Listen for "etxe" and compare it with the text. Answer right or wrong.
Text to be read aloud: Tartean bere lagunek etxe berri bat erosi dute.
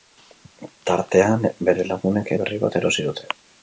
wrong